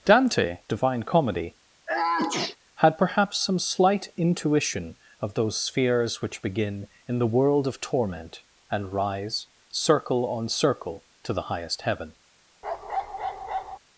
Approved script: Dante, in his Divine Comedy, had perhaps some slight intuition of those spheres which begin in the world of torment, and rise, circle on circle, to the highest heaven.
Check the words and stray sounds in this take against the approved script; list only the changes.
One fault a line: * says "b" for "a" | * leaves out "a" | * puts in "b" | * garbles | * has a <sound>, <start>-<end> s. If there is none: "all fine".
* leaves out "in his"
* has a sneeze, 1.9-2.6 s
* has a bark, 12.6-13.8 s